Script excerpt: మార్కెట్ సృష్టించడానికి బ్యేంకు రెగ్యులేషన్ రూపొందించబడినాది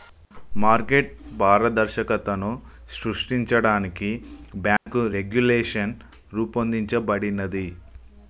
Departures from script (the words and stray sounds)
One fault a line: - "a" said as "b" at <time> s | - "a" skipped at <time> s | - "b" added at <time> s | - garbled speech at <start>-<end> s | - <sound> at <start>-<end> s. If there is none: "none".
- "పారదర్శకతను" added at 1.4 s
- dropout at 4.8-4.9 s